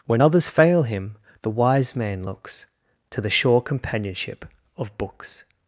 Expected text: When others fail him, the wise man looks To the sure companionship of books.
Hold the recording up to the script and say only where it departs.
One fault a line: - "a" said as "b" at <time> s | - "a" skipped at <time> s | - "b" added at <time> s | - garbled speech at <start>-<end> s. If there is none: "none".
none